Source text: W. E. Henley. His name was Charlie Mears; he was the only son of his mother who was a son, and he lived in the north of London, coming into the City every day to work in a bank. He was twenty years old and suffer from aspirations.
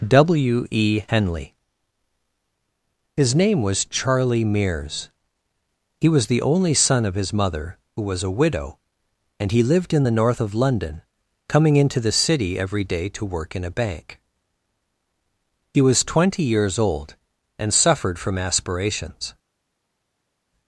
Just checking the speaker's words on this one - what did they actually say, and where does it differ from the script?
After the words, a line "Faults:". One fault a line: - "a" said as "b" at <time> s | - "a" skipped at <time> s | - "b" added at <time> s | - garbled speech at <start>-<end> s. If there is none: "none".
W. E. Henley. His name was Charlie Mears; he was the only son of his mother who was a widow, and he lived in the north of London, coming into the City every day to work in a bank. He was twenty years old and suffered from aspirations.
Faults:
- "son" said as "widow" at 8.3 s
- "suffer" said as "suffered" at 17.7 s